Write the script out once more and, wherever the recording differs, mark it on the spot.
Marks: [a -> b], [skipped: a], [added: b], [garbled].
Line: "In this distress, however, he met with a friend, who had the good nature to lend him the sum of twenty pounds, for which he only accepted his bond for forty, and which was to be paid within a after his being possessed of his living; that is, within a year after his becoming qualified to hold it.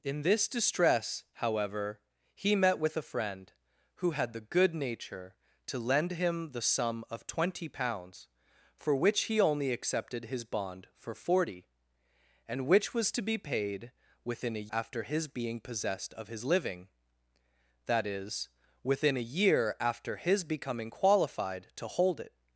"In this distress, however, he met with a friend, who had the good nature to lend him the sum of twenty pounds, for which he only accepted his bond for forty, and which was to be paid within a after his being possessed of his living; that is, within a year after his becoming qualified to hold it.